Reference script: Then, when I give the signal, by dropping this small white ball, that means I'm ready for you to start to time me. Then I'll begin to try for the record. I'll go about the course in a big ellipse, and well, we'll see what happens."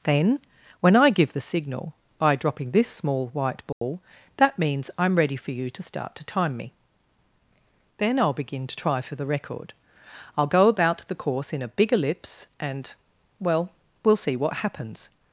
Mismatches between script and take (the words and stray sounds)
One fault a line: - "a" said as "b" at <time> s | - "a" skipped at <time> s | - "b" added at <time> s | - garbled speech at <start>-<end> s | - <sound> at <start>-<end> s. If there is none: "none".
- dropout at 3.7-3.8 s